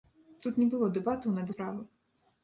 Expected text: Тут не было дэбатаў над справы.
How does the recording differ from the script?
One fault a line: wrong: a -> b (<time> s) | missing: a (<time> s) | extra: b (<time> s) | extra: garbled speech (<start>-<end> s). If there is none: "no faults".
no faults